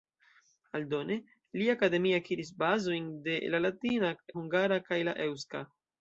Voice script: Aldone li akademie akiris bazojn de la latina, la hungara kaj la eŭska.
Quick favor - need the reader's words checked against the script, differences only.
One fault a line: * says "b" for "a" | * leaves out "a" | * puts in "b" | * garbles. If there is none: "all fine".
* leaves out "la"